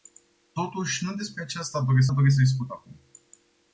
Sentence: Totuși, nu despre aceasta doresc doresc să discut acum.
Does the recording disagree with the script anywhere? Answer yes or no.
no